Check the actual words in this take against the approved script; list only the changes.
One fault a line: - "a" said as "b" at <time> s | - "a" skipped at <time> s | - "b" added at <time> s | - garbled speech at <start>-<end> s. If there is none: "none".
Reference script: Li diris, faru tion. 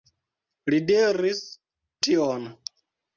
- "faru" skipped at 1.4 s